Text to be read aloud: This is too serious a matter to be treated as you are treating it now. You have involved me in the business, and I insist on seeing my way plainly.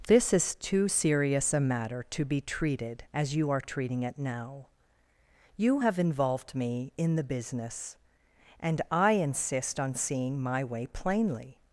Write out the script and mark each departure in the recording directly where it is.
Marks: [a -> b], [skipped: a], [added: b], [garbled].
This is too serious a matter to be treated as you are treating it now. You have involved me in the business, and I insist on seeing my way plainly.